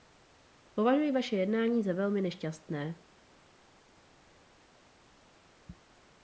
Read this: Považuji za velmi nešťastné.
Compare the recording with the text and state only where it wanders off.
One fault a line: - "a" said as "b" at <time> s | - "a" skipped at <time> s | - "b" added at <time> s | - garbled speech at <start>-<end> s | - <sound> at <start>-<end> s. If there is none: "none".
- "vaše jednání" added at 1.1 s